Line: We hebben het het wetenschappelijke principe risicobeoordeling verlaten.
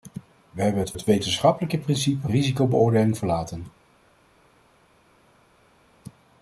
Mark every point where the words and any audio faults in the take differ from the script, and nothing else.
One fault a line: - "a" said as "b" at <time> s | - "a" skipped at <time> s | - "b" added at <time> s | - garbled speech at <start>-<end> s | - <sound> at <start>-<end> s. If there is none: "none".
none